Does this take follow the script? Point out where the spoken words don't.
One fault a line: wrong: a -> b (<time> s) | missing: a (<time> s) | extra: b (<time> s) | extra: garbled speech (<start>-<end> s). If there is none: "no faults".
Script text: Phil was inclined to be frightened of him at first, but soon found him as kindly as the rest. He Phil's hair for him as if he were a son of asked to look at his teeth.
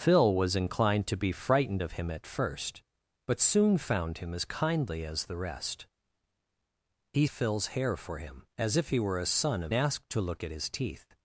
no faults